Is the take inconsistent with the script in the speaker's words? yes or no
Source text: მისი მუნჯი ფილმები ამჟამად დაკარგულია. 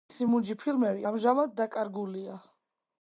no